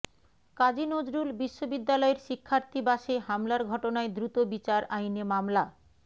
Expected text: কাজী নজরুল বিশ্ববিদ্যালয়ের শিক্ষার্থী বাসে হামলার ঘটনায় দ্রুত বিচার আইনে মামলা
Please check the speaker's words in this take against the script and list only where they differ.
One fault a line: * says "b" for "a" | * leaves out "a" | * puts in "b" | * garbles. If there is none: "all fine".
all fine